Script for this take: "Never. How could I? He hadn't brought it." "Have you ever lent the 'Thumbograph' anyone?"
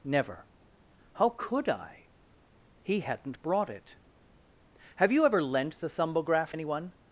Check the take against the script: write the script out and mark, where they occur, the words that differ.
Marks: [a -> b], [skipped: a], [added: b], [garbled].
"Never. How could I? He hadn't brought it." "Have you ever lent the 'Thumbograph' anyone?"